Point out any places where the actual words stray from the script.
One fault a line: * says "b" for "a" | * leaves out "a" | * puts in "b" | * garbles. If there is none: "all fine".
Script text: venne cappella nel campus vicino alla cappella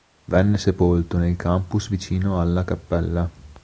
* says "sepolto" for "cappella"